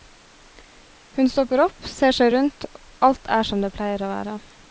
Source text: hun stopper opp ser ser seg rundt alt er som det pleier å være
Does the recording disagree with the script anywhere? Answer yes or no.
yes